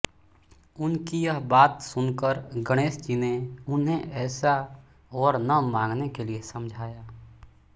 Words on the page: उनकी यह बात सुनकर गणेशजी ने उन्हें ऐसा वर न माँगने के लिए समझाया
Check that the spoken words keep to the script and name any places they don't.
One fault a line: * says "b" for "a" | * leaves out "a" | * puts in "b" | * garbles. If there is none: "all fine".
all fine